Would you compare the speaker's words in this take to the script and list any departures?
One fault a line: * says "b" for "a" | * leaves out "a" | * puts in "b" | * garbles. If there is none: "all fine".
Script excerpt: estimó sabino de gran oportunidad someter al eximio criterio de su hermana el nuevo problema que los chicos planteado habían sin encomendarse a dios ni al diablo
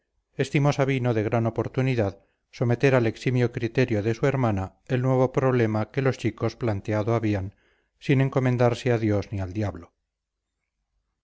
all fine